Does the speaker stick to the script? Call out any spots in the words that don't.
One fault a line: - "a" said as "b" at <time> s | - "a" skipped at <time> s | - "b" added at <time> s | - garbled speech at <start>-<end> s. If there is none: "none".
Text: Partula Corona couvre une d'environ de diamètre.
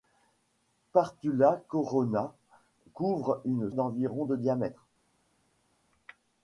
none